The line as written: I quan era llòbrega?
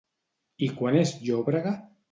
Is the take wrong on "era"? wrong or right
wrong